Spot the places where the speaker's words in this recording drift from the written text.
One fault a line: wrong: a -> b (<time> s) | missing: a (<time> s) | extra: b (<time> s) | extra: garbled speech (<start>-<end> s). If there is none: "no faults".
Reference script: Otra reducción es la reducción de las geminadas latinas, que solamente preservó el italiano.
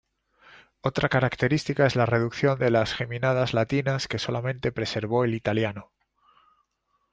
wrong: reducción -> característica (1.1 s)